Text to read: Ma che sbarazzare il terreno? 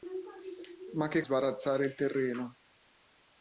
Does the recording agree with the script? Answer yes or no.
yes